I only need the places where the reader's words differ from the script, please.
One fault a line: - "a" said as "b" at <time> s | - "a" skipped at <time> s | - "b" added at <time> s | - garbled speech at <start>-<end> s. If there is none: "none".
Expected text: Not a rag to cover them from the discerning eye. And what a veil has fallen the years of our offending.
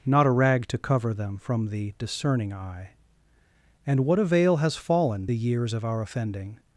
none